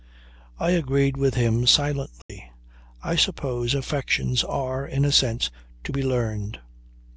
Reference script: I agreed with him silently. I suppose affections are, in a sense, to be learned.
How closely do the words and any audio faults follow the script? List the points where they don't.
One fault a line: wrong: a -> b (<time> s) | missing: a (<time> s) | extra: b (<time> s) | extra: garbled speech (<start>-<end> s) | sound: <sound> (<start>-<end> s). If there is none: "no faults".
sound: dropout (2.2-2.3 s)